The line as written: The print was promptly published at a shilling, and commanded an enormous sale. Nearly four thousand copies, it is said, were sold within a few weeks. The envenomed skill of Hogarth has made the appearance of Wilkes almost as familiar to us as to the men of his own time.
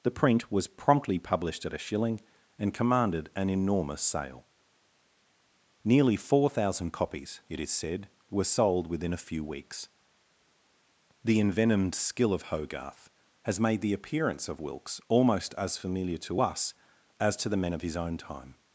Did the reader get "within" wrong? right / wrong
right